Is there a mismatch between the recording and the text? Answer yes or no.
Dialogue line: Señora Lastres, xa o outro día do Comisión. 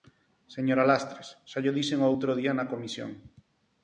yes